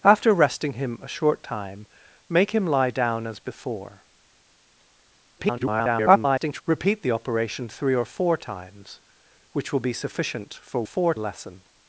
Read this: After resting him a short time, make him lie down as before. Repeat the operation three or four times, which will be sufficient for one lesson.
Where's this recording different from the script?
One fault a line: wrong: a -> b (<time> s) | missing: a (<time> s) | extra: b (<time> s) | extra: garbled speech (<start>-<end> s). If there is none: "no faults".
extra: garbled speech (5.4-6.6 s)
wrong: one -> four (10.8 s)